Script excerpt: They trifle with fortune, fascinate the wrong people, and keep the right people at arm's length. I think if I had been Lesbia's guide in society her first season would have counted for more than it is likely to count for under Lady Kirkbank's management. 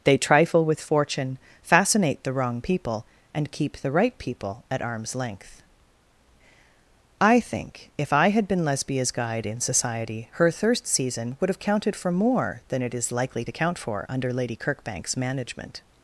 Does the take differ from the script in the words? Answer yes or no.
yes